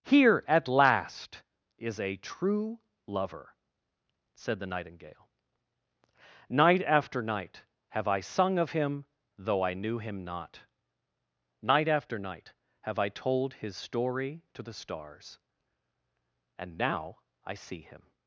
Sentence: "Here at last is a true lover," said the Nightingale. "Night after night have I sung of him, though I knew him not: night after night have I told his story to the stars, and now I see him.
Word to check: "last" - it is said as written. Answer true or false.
true